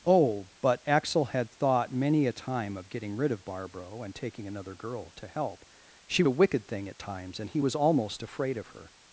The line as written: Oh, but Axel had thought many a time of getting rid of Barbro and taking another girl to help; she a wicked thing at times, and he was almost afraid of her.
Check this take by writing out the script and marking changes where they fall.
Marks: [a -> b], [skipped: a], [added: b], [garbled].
Oh, but Axel had thought many a time of getting rid of Barbro and taking another girl to help; she a wicked thing at times, and he was almost afraid of her.